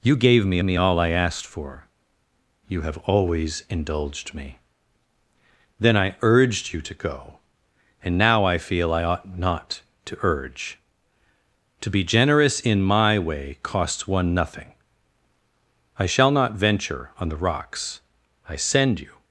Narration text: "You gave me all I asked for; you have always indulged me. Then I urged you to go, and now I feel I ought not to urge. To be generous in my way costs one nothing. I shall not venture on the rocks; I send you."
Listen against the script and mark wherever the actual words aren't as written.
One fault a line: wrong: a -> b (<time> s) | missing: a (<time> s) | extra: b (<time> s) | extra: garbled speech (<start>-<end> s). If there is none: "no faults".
extra: me (0.6 s)